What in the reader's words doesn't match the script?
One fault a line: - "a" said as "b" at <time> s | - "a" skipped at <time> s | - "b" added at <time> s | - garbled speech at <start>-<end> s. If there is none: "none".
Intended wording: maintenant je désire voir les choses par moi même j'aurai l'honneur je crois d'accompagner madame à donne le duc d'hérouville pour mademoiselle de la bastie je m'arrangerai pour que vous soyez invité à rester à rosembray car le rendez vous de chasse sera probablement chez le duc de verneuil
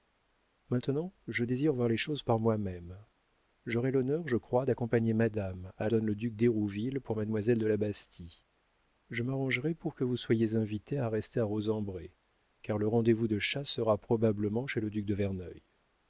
none